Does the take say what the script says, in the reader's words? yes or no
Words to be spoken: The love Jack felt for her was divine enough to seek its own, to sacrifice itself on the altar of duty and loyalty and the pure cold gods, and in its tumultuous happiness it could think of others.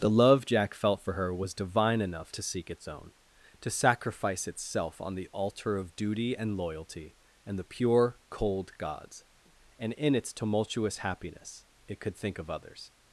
yes